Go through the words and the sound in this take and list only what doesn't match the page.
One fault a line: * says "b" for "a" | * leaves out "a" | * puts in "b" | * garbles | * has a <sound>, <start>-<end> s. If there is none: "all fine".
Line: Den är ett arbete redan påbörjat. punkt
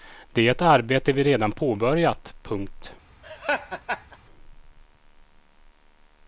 * says "Det" for "Den"
* puts in "vi"
* has a laugh, 3.2-4.2 s